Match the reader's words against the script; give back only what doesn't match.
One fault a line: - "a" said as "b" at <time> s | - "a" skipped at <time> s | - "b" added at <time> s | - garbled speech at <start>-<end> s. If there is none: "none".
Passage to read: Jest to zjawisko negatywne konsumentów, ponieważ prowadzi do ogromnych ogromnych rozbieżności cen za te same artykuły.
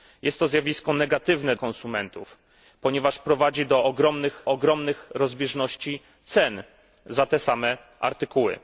none